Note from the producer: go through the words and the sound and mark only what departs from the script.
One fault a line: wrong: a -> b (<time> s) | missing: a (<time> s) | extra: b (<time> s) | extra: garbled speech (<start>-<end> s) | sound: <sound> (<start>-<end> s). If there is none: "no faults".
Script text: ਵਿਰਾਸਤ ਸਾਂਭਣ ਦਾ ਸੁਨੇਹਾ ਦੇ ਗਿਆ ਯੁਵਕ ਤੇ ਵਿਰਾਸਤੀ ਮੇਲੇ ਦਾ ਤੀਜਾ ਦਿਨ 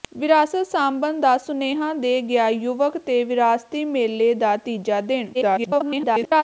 extra: garbled speech (5.3-6.4 s)